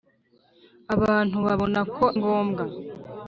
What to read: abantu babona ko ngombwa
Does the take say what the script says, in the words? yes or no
yes